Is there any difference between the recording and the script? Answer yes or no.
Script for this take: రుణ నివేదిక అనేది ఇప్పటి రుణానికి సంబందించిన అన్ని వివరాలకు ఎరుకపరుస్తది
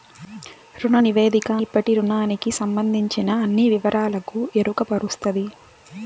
yes